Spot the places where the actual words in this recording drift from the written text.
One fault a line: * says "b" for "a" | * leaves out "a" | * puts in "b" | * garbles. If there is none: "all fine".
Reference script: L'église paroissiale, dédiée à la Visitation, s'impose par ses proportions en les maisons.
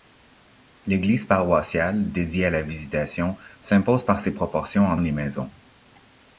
all fine